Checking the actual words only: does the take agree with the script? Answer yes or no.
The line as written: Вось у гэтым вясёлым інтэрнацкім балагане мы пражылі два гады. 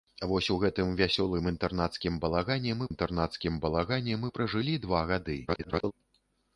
no